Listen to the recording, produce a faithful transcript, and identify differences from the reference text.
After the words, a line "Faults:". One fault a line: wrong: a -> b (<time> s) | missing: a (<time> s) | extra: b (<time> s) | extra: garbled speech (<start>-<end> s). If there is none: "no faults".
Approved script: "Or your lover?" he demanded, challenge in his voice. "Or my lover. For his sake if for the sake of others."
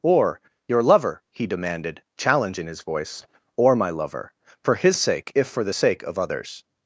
"Or your lover?" he demanded, challenge in his voice. "Or my lover. For his sake if for the sake of others."
Faults:
no faults